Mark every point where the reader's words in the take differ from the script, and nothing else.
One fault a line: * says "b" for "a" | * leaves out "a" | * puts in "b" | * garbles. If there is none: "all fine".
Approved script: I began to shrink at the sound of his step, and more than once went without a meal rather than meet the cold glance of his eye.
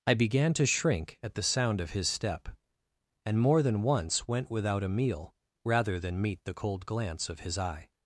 all fine